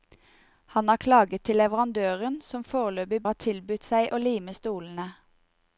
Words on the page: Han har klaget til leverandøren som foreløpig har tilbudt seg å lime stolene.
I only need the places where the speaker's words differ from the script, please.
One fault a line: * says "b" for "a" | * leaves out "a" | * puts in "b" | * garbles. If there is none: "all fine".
all fine